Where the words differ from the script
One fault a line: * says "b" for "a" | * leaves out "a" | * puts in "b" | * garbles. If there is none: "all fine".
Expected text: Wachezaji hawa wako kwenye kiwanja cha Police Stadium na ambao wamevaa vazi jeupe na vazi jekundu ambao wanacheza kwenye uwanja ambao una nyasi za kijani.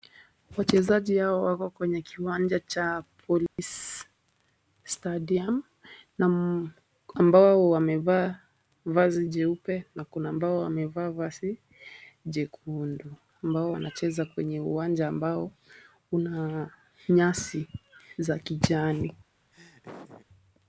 * puts in "kuna ambao wamevaa"